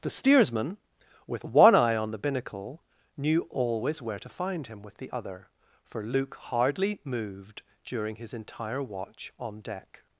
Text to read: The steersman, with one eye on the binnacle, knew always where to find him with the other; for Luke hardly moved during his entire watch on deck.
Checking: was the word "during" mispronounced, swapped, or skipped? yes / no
no